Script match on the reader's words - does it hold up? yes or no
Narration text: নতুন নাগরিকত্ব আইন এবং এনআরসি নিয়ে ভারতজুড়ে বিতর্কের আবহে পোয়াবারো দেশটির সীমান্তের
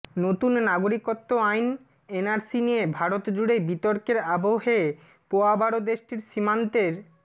no